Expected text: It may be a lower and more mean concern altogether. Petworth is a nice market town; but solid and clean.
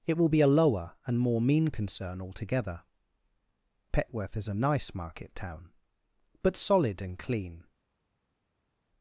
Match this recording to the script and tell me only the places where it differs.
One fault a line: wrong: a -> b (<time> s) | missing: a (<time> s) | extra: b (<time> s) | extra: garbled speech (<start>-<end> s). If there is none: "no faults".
wrong: may -> will (0.2 s)